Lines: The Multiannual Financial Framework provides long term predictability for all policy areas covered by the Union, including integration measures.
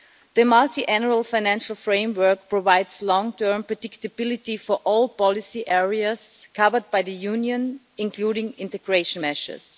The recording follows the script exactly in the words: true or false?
true